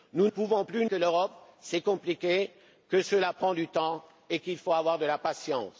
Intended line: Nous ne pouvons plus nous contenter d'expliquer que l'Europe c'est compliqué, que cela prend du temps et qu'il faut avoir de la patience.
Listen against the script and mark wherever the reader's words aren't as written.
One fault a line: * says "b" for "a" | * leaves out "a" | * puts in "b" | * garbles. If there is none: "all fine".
* leaves out "ne"
* leaves out "nous contenter d'expliquer"